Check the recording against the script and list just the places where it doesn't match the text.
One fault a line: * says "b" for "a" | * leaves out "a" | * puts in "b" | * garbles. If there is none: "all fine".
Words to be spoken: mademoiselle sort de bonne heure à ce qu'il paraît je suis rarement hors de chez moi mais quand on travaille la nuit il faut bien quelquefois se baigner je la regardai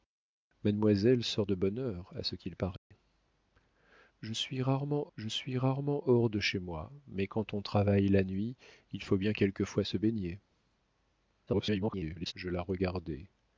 * puts in "je suis rarement"
* garbles